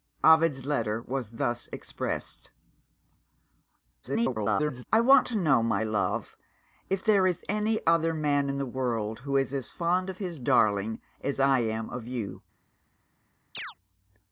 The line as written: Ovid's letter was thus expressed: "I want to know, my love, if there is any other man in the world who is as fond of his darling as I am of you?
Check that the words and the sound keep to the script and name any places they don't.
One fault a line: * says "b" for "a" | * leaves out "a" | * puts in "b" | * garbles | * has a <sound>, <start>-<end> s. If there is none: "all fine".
* garbles
* has a chirp, 13.5-13.7 s